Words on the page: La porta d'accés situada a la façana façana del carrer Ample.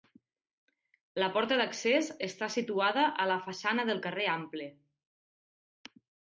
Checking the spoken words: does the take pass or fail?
fail